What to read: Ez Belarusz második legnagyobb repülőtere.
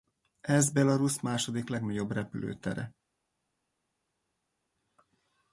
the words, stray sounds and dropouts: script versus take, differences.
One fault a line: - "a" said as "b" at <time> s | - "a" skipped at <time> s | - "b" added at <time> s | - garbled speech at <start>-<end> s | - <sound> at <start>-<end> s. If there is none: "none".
none